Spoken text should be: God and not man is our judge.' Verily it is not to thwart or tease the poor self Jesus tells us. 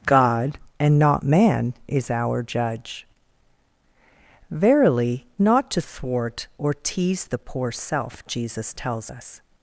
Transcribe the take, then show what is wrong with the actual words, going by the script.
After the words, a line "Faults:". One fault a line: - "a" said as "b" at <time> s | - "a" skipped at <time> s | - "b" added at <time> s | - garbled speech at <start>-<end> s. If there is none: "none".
God and not man is our judge.' Verily not to thwart or tease the poor self Jesus tells us.
Faults:
- "it is" skipped at 5.2 s